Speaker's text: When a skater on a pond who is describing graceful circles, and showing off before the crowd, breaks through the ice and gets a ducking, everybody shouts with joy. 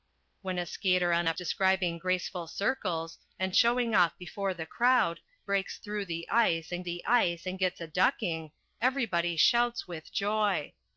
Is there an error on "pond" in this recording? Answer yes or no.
yes